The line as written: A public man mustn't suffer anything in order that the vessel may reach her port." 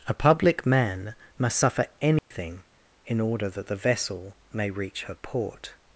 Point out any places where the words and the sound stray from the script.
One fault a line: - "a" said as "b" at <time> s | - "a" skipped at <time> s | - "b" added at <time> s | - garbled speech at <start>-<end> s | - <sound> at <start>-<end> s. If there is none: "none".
- "mustn't" said as "must" at 1.4 s
- dropout at 2.2-2.3 s